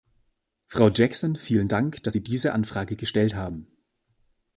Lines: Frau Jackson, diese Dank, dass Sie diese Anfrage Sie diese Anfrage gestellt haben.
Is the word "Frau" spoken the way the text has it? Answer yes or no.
yes